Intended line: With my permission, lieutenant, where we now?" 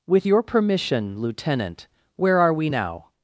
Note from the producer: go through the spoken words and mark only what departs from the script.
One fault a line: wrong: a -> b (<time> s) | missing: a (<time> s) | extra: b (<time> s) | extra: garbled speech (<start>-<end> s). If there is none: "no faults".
wrong: my -> your (0.2 s)
extra: are (2.4 s)